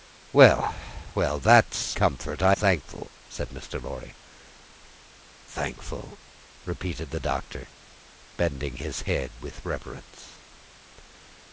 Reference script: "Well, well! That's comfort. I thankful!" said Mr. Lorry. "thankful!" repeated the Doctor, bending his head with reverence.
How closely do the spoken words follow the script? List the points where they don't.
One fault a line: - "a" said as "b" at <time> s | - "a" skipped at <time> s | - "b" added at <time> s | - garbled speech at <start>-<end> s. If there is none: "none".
none